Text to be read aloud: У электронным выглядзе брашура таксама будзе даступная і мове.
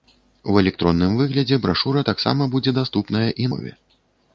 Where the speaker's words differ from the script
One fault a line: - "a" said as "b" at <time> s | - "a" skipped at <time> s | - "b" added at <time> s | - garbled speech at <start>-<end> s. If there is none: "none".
none